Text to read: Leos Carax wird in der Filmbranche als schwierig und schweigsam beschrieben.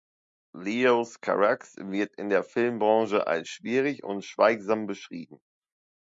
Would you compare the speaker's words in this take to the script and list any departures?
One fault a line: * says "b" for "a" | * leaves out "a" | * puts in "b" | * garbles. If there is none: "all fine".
all fine